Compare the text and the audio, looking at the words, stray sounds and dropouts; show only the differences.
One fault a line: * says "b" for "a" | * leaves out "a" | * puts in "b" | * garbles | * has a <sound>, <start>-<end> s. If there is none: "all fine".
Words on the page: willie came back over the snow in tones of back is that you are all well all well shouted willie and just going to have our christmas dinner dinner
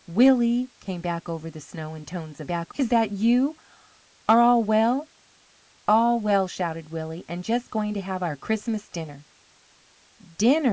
all fine